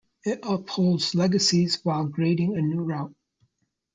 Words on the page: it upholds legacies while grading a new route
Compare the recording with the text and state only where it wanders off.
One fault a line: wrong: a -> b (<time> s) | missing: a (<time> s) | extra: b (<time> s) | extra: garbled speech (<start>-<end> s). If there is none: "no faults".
no faults